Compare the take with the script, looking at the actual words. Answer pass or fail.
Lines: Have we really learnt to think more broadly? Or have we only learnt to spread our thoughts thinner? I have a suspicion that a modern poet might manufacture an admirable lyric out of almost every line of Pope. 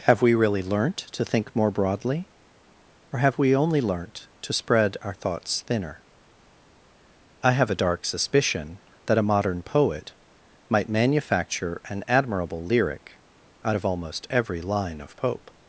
fail